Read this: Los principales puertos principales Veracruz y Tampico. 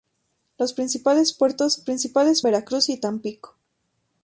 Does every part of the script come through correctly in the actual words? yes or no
yes